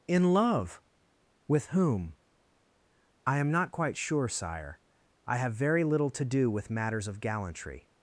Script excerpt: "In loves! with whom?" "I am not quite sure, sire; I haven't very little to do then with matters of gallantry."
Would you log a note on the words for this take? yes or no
yes